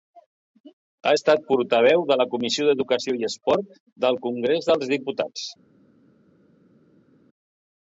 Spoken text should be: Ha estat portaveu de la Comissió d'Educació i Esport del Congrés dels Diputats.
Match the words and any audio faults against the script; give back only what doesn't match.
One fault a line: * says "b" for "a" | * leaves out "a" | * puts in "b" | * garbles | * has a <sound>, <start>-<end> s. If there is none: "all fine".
all fine